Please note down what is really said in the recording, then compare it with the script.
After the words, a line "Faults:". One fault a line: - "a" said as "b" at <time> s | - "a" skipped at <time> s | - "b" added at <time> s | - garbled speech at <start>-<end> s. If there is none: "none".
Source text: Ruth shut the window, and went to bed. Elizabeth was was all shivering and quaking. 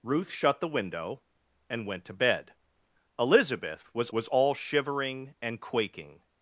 Ruth shut the window, and went to bed. Elizabeth was was all shivering and quaking.
Faults:
none